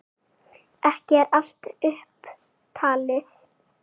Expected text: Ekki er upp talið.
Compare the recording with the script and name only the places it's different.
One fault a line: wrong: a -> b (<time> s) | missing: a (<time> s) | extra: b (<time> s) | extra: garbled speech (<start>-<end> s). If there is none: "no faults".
extra: allt (1.4 s)